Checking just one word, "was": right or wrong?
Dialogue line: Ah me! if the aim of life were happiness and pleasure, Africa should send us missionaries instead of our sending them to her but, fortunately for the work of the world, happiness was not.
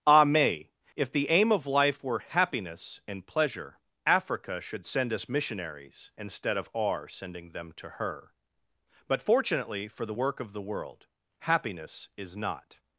wrong